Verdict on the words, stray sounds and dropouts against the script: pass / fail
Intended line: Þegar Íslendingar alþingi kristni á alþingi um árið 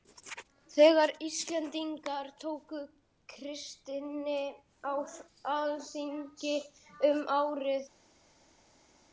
fail